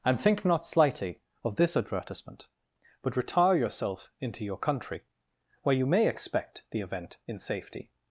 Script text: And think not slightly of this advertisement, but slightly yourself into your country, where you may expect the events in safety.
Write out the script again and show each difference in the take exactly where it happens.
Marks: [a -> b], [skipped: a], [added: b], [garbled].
And think not slightly of this advertisement, but [slightly -> retire] yourself into your country, where you may expect the [events -> event] in safety.